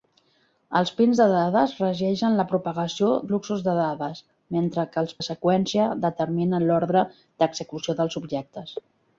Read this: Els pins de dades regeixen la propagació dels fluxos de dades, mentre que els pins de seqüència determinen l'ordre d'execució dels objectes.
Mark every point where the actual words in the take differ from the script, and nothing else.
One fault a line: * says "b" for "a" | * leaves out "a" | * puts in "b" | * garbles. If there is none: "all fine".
* leaves out "dels"
* leaves out "pins"